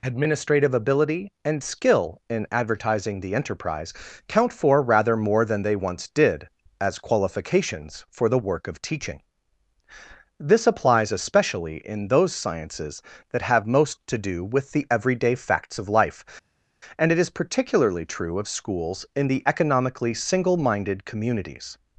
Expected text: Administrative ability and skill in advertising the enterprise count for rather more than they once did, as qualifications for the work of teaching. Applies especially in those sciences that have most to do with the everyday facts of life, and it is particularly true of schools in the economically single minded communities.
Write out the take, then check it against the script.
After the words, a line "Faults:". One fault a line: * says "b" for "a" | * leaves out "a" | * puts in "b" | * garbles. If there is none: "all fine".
Administrative ability and skill in advertising the enterprise count for rather more than they once did, as qualifications for the work of teaching. This applies especially in those sciences that have most to do with the everyday facts of life, and it is particularly true of schools in the economically single minded communities.
Faults:
* puts in "This"